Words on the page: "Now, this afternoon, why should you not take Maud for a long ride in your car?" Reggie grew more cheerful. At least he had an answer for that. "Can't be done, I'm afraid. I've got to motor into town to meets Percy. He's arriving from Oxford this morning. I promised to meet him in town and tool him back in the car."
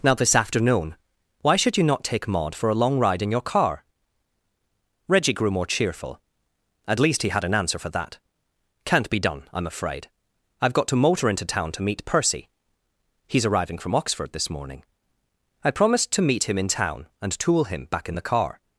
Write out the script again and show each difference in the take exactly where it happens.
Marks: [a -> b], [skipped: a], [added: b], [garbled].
"Now, this afternoon, why should you not take Maud for a long ride in your car?" Reggie grew more cheerful. At least he had an answer for that. "Can't be done, I'm afraid. I've got to motor into town to [meets -> meet] Percy. He's arriving from Oxford this morning. I promised to meet him in town and tool him back in the car."